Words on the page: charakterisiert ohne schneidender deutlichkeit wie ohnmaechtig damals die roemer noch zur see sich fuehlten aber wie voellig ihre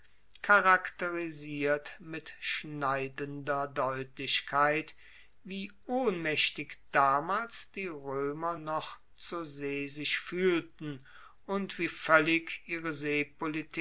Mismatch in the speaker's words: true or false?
true